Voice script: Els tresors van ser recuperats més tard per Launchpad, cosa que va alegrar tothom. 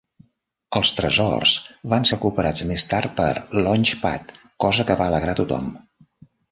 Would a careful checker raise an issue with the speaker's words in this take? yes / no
yes